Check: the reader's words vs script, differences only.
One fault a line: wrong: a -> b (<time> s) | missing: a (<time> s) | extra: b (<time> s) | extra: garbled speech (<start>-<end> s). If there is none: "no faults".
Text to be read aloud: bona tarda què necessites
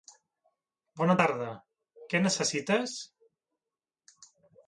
no faults